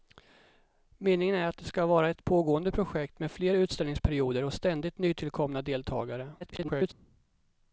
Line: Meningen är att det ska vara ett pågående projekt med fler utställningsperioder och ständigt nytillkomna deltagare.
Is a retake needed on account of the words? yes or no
yes